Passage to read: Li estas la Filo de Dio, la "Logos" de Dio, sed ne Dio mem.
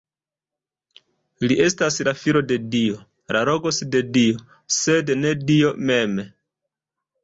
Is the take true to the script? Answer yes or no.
yes